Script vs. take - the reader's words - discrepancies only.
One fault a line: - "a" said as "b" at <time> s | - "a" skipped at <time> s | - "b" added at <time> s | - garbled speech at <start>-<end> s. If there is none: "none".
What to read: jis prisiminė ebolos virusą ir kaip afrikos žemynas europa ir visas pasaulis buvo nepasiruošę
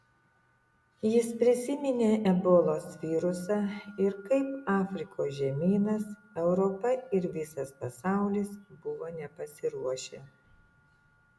none